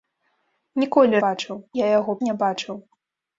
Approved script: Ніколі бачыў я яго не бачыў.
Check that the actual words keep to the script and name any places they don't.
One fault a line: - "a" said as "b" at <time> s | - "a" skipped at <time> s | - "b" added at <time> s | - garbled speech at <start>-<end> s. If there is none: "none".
none